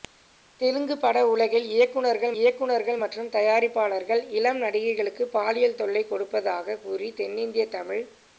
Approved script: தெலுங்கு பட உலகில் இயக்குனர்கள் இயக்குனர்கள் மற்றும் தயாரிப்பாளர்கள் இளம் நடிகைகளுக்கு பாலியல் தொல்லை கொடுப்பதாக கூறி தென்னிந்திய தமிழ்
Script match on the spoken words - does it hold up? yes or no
yes